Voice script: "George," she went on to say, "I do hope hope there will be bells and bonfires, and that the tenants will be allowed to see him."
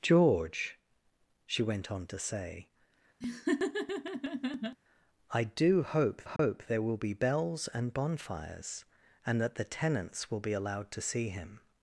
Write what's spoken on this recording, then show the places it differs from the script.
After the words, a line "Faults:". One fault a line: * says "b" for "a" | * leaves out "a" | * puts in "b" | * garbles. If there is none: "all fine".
"George," she went on to say, "I do hope hope there will be bells and bonfires, and that the tenants will be allowed to see him."
Faults:
all fine